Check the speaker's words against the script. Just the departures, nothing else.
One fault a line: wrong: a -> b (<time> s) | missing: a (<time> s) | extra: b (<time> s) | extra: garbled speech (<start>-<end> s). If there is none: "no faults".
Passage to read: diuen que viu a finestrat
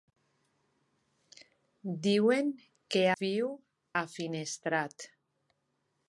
no faults